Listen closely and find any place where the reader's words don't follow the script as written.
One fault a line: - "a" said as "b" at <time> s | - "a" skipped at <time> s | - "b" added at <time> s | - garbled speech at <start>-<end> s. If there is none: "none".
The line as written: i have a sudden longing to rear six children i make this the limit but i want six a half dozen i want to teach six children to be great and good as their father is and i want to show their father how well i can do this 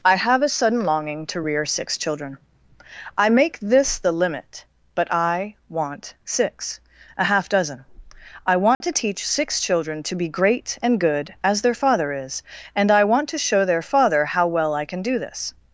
none